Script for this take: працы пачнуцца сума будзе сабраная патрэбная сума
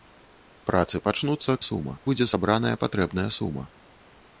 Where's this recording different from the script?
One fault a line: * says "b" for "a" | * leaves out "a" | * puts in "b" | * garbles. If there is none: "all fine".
all fine